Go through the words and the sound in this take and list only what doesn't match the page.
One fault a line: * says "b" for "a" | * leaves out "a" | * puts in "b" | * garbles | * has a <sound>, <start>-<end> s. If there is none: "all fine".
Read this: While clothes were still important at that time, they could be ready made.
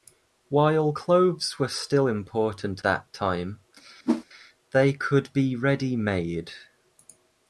* leaves out "at"
* has a whoosh, 4.0-4.2 s